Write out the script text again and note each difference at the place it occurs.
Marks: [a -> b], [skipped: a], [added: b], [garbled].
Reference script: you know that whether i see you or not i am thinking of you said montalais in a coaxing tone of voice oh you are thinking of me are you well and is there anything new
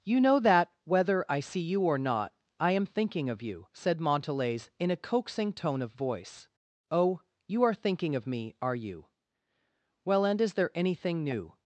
you know that whether i see you or not i am thinking of you said montalais in a coaxing tone of voice oh you are thinking of me are you well and is there anything new